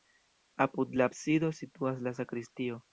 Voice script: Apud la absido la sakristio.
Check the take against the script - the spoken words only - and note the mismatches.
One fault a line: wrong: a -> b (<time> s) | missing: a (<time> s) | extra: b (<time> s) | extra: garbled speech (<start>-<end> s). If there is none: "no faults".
extra: situas (1.6 s)